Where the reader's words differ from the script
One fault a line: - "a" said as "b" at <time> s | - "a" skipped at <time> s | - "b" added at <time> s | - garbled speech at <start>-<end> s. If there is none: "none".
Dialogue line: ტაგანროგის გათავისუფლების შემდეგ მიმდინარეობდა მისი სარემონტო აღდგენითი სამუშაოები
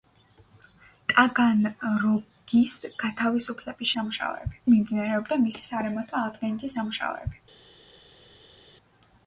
- "შემდეგ" said as "სამუშაოები" at 4.0 s